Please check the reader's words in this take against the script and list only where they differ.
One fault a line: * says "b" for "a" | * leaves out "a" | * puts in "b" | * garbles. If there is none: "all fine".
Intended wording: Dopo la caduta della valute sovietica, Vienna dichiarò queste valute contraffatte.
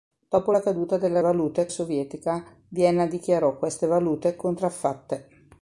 all fine